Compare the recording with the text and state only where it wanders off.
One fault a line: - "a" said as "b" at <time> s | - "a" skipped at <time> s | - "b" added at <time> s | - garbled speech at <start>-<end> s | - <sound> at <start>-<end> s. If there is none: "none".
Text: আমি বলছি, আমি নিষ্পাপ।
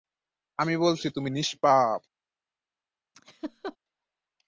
- "আমি" said as "তুমি" at 1.1 s
- laugh at 3.1-3.8 s